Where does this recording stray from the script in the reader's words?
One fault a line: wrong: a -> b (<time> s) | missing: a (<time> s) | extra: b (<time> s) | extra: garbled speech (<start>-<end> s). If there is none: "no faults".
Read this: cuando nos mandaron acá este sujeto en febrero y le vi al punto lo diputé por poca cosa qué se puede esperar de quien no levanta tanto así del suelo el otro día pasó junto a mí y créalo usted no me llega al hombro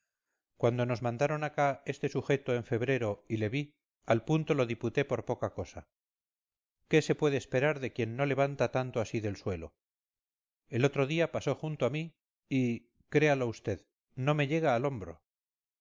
no faults